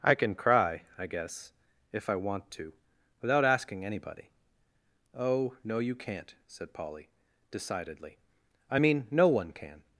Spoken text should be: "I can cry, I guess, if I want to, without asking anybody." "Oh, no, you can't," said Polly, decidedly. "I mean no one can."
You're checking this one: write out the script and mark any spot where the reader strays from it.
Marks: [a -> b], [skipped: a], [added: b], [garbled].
"I can cry, I guess, if I want to, without asking anybody." "Oh, no, you can't," said Polly, decidedly. "I mean no one can."